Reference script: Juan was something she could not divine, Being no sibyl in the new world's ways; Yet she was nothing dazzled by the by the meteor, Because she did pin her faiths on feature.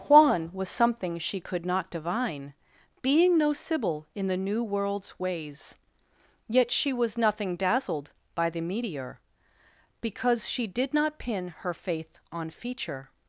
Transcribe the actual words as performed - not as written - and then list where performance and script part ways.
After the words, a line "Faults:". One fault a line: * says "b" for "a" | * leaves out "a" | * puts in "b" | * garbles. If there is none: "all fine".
Juan was something she could not divine, Being no sibyl in the new world's ways; Yet she was nothing dazzled by the meteor, Because she did not pin her faith on feature.
Faults:
* leaves out "by the"
* puts in "not"
* says "faith" for "faiths"